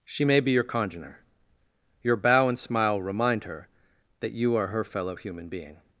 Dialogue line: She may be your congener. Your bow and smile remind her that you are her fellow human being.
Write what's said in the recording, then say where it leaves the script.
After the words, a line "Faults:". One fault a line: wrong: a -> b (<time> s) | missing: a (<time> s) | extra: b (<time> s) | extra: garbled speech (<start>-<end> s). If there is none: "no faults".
She may be your congener. Your bow and smile remind her that you are her fellow human being.
Faults:
no faults